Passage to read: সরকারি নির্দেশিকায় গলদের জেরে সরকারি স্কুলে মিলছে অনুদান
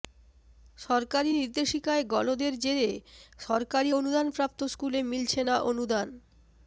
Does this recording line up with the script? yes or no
no